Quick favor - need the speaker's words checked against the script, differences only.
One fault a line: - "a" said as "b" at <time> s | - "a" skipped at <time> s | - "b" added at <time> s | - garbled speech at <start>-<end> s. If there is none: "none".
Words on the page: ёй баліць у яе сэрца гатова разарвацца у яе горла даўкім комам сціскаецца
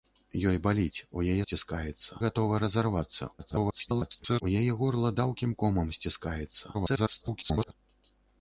- "сэрца" said as "сціскаецца" at 1.4 s
- garbled speech at 3.4-4.4 s
- garbled speech at 6.7-7.7 s